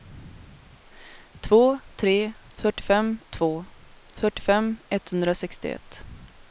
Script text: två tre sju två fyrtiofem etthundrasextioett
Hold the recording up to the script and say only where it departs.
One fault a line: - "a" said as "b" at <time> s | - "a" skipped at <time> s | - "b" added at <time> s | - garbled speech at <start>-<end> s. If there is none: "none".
- "sju" said as "fyrtiofem" at 2.6 s